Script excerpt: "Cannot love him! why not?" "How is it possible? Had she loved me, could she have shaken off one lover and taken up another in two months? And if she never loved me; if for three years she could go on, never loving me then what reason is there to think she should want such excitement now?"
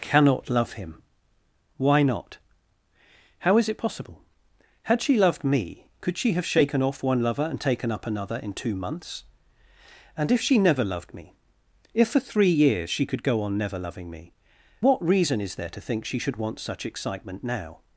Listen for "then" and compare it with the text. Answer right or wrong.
wrong